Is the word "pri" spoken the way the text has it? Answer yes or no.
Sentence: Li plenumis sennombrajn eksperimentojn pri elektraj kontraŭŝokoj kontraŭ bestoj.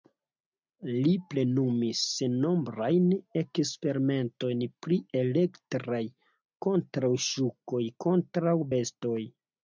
yes